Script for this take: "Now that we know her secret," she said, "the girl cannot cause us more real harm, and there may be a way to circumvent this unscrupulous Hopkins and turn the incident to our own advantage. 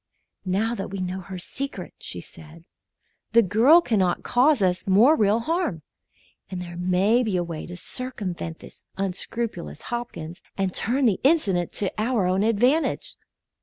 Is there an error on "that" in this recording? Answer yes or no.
no